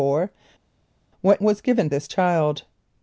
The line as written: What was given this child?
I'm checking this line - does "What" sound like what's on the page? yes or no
yes